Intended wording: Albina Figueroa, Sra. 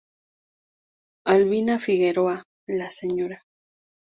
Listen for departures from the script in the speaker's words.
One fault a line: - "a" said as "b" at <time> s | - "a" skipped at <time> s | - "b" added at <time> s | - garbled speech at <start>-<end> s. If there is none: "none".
- "la" added at 2.6 s